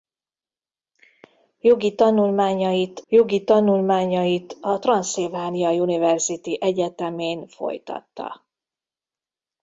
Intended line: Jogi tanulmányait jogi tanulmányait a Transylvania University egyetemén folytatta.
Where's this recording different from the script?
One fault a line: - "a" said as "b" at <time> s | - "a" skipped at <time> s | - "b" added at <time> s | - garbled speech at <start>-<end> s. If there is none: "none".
none